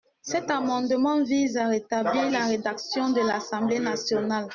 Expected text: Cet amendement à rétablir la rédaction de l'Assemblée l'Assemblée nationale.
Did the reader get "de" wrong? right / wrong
right